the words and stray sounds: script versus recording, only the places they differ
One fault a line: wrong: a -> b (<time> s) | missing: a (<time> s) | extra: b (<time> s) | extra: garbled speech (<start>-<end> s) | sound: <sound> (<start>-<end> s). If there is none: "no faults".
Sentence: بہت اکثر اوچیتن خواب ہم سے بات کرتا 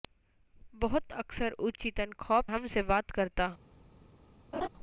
sound: laugh (4.5-4.7 s)